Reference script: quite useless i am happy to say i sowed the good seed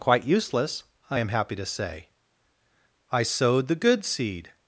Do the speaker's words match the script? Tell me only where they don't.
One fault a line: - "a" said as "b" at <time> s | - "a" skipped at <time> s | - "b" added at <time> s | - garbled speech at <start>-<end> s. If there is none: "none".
none